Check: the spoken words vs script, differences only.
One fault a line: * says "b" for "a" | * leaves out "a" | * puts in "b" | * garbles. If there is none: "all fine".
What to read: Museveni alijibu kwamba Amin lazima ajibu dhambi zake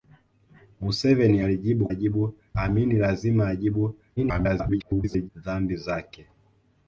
* says "ajibu" for "kwamba"
* garbles